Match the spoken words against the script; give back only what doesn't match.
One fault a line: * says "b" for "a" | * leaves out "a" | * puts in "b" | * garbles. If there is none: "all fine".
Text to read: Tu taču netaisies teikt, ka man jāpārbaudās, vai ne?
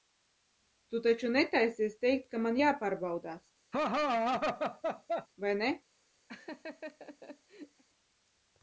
all fine